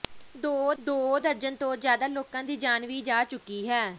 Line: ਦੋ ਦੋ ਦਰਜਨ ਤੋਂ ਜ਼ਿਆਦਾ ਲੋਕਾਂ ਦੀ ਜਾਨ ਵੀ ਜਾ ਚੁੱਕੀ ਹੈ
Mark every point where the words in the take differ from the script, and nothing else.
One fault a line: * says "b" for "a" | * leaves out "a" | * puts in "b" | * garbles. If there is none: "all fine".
all fine